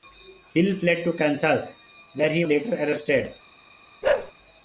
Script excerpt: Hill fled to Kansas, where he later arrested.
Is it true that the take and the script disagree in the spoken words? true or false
false